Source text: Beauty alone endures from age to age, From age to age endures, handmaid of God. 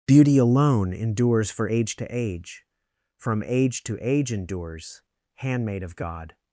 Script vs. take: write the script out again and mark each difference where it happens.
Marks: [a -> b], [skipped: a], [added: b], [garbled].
Beauty alone endures [from -> for] age to age, From age to age endures, handmaid of God.